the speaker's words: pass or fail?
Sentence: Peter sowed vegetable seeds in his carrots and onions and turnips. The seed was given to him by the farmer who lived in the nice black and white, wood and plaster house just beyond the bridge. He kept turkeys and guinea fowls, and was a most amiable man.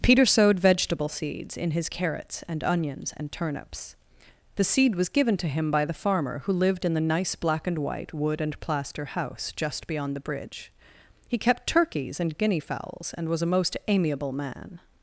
pass